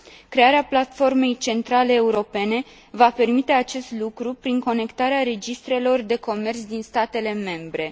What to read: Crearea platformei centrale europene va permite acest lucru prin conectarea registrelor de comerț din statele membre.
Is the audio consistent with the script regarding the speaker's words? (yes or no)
yes